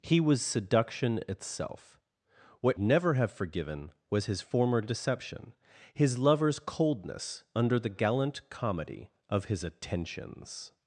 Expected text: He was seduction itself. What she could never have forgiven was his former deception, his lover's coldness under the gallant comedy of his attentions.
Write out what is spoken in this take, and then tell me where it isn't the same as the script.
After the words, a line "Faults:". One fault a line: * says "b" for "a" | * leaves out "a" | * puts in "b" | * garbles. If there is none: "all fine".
He was seduction itself. What never have forgiven was his former deception, his lover's coldness under the gallant comedy of his attentions.
Faults:
* leaves out "she could"